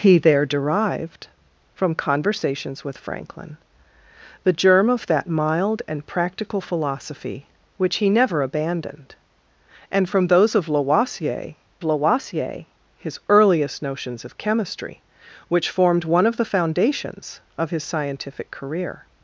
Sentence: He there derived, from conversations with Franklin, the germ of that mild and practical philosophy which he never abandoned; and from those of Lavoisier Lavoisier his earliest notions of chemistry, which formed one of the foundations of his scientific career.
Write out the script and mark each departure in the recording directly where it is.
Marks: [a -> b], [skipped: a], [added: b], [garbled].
He there derived, from conversations with Franklin, the germ of that mild and practical philosophy which he never abandoned; and from those of Lavoisier Lavoisier his earliest notions of chemistry, which formed one of the foundations of his scientific career.